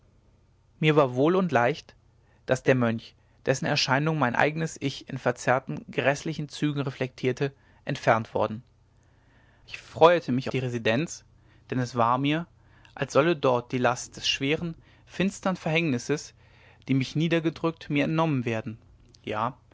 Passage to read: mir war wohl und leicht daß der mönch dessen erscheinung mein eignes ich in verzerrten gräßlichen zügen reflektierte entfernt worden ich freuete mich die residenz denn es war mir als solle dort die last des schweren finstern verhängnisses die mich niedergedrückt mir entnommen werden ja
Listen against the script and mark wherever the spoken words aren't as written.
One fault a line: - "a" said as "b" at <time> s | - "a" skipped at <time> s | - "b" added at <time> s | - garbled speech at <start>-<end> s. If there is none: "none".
none